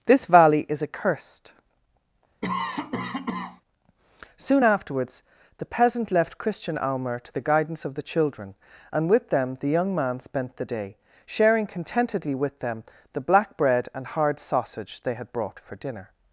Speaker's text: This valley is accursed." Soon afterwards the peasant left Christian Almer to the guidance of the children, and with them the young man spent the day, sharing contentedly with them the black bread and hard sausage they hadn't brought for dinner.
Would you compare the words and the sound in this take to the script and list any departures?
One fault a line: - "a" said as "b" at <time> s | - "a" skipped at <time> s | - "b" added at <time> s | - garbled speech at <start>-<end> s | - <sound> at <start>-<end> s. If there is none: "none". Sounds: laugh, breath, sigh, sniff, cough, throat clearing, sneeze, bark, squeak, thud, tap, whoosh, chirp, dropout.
- cough at 2.4-3.6 s
- "hadn't" said as "had" at 15.1 s